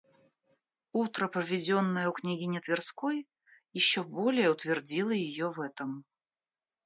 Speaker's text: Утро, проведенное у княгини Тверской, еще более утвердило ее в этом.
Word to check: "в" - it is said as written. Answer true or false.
true